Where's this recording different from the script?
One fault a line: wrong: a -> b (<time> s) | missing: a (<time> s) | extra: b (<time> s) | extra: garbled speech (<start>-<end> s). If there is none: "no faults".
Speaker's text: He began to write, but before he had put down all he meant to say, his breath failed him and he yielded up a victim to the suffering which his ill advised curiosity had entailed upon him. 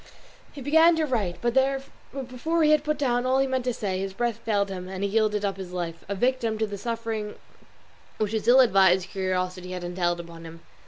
extra: his life (5.6 s)